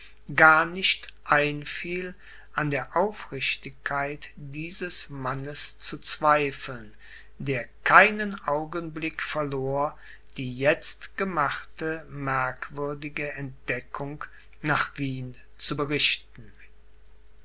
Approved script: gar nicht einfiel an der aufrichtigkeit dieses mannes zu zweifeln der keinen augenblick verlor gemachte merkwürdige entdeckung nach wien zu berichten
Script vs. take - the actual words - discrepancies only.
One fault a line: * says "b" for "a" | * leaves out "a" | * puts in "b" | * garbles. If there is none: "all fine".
* puts in "die jetzt"